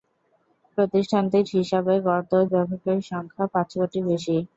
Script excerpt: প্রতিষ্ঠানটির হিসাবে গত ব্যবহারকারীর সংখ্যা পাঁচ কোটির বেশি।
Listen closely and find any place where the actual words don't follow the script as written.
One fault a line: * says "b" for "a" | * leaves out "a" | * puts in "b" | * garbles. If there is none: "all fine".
all fine